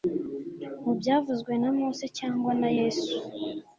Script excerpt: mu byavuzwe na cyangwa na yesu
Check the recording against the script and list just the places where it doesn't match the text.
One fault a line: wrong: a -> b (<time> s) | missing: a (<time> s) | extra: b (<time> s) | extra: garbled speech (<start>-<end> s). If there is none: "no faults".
extra: mose (1.8 s)